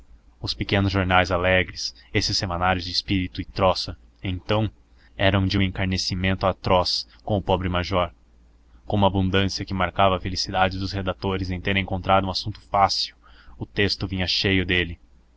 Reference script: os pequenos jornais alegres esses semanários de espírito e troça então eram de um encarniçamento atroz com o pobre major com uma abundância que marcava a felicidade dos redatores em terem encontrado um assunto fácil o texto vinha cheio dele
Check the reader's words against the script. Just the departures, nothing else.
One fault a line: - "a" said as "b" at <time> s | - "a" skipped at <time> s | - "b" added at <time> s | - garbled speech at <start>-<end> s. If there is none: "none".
none